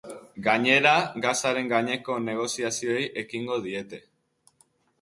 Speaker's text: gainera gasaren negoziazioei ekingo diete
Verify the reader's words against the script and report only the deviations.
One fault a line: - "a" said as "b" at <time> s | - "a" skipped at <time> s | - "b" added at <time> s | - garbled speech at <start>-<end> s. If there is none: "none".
- "gaineko" added at 1.7 s